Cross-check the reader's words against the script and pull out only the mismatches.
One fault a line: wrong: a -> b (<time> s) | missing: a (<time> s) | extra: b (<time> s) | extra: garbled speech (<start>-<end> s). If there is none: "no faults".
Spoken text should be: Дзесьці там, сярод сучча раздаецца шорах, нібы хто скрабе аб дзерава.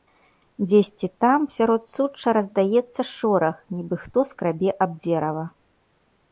no faults